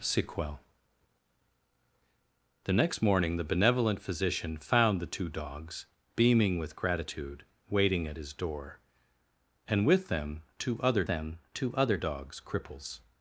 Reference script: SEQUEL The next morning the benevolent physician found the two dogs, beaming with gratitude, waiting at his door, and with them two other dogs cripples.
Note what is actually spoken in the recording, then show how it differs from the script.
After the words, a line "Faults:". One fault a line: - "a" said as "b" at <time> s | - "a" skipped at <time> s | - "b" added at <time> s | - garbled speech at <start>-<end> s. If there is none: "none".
SEQUEL The next morning the benevolent physician found the two dogs, beaming with gratitude, waiting at his door, and with them two other them two other dogs cripples.
Faults:
- "them two other" added at 11.1 s